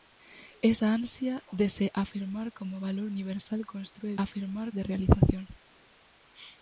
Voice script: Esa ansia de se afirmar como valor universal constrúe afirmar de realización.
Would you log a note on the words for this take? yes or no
no